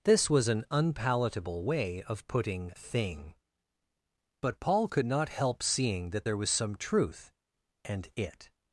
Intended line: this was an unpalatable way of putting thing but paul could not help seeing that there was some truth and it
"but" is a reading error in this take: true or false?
false